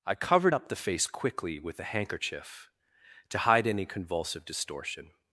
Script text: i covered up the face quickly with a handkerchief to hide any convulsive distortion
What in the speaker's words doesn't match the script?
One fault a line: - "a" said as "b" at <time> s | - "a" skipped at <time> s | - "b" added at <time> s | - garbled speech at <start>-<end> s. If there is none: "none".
none